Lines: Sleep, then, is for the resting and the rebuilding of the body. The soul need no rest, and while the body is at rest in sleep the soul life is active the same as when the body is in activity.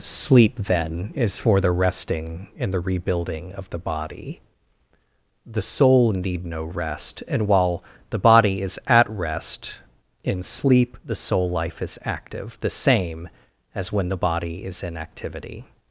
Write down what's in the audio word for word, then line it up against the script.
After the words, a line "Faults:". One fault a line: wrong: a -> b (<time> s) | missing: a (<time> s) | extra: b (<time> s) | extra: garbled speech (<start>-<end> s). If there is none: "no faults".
Sleep, then, is for the resting and the rebuilding of the body. The soul need no rest, and while the body is at rest in sleep the soul life is active the same as when the body is in activity.
Faults:
no faults